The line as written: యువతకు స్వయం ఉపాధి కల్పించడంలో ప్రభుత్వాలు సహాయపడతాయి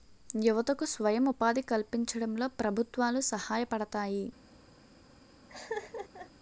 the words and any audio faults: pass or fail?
fail